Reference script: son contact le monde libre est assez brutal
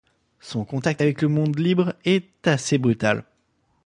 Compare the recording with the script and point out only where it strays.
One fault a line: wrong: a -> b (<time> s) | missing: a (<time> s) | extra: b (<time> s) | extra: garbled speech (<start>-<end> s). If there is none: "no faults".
extra: avec (1.0 s)